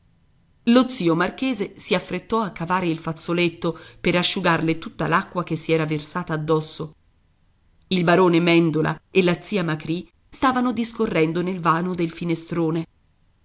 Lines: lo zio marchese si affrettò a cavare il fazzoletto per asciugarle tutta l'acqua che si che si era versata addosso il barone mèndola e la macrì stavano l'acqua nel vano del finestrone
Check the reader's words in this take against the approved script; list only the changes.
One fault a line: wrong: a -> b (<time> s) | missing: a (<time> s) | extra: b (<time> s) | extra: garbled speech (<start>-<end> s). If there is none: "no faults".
missing: che si (5.7 s)
extra: zia (9.4 s)
wrong: l'acqua -> discorrendo (10.7 s)